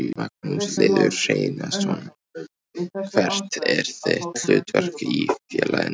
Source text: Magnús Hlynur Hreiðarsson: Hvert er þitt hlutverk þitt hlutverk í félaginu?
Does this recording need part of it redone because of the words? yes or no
yes